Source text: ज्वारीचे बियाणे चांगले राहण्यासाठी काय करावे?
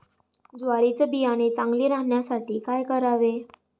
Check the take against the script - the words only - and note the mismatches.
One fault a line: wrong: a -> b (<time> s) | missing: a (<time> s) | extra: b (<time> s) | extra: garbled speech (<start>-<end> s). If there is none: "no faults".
no faults